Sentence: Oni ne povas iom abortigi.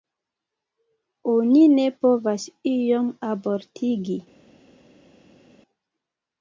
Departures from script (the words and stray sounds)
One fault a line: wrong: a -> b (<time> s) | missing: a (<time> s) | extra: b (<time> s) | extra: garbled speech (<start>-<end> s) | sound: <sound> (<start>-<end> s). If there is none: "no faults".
no faults